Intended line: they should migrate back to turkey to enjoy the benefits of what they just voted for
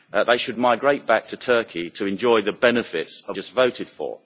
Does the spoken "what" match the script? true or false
false